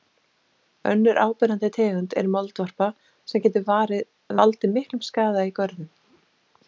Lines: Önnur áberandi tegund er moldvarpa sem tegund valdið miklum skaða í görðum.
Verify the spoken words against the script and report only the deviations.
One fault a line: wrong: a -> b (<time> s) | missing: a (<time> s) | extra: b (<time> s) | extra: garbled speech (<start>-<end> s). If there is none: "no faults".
wrong: tegund -> getur (3.5 s)